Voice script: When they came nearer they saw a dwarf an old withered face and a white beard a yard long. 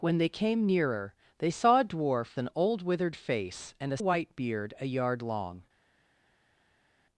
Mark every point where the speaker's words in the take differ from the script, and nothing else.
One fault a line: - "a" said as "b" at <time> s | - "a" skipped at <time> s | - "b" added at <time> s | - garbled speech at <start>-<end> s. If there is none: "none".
none